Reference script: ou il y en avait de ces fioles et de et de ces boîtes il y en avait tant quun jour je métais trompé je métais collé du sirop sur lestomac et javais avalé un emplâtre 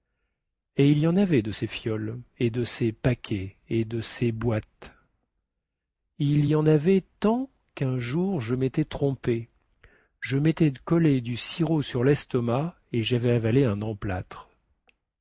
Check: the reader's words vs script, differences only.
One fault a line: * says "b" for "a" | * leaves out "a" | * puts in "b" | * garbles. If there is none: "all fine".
* says "et" for "ou"
* puts in "ces paquets"